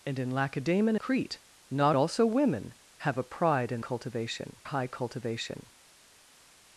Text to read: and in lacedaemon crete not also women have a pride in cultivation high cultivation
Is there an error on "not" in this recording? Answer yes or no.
no